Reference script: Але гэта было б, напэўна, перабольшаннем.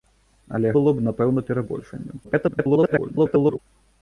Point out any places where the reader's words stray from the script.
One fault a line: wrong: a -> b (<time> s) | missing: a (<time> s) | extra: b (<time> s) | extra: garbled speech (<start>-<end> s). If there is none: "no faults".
missing: гэта (0.7 s)
extra: garbled speech (2.2-3.6 s)